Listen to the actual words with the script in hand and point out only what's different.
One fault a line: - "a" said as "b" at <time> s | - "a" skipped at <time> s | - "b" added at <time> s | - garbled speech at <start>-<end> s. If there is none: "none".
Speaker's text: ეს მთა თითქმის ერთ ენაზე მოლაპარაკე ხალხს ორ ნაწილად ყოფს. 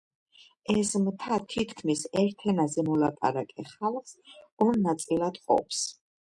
none